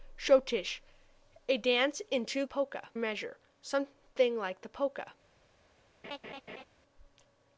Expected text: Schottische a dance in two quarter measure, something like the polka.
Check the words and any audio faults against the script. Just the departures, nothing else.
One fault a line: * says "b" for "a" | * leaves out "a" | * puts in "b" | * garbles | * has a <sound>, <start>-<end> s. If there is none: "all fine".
* says "polka" for "quarter"
* has a laugh, 6.0-6.6 s